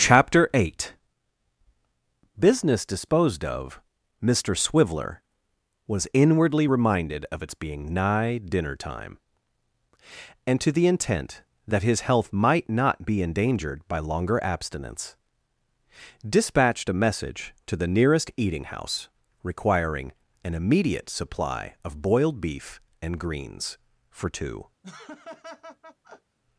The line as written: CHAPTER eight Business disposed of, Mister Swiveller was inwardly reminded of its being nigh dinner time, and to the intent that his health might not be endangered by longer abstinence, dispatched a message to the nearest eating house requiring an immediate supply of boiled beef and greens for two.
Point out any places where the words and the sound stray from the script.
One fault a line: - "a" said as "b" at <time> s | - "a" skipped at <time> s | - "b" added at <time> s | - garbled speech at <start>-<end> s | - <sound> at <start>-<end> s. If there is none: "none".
- laugh at 24.8-26.4 s